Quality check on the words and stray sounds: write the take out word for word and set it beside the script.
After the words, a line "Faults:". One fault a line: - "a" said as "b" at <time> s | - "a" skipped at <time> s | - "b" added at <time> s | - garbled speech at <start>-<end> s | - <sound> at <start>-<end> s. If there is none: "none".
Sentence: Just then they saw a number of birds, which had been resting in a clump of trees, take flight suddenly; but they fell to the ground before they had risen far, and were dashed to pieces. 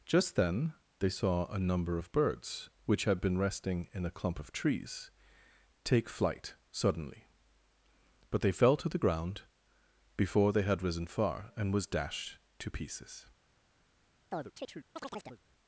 Just then they saw a number of birds, which had been resting in a clump of trees, take flight suddenly; but they fell to the ground before they had risen far, and was dashed to pieces.
Faults:
- "were" said as "was" at 11.7 s
- chirp at 14.3-15.4 s